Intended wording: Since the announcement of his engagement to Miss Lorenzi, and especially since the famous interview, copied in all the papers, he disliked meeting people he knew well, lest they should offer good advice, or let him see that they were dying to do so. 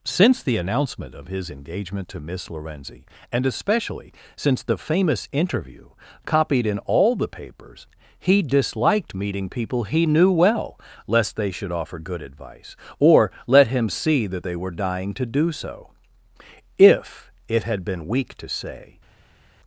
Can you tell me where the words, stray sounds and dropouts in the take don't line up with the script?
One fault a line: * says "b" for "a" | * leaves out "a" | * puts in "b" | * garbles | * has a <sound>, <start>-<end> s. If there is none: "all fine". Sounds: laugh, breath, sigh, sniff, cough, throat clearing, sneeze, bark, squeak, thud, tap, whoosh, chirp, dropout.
* puts in "If it had been weak to say"